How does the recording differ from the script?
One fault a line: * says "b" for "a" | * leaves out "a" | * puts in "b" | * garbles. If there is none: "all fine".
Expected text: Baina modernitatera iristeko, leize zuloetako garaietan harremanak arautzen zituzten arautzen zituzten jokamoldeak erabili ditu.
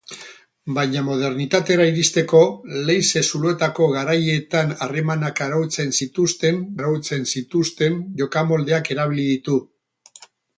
all fine